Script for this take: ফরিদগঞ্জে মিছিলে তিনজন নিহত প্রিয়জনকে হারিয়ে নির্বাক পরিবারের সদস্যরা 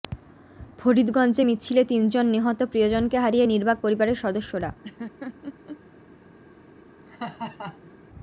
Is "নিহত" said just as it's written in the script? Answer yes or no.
yes